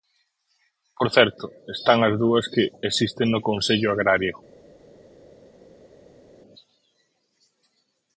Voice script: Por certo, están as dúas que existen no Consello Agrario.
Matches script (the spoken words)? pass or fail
pass